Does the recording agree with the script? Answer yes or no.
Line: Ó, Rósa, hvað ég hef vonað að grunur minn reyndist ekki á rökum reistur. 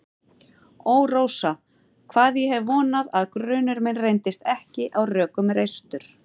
yes